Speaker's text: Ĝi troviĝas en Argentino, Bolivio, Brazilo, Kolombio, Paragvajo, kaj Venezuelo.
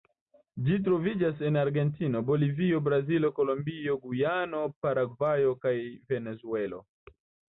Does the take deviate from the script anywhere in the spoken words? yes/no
yes